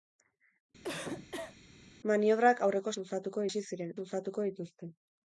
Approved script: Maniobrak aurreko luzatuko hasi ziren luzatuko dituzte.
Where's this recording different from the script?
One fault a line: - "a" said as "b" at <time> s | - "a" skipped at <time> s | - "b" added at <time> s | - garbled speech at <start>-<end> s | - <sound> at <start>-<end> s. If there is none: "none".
- cough at 0.8-1.6 s